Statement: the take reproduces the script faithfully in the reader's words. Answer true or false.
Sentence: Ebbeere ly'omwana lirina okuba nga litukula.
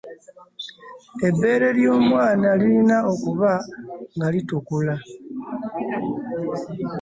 true